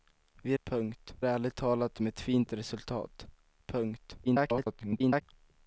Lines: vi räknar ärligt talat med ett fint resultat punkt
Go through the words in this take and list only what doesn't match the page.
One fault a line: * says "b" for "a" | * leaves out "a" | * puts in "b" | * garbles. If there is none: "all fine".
* says "punkt" for "räknar"
* garbles